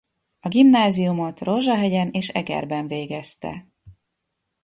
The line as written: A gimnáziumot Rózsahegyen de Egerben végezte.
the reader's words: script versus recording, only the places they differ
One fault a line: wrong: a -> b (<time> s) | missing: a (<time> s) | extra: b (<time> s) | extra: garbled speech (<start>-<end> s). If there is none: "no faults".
wrong: de -> és (2.1 s)